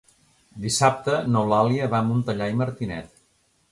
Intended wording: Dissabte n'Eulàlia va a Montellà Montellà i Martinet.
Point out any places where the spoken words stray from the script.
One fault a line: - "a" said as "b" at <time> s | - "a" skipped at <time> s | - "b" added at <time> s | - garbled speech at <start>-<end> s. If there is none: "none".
- "Montellà" skipped at 2.5 s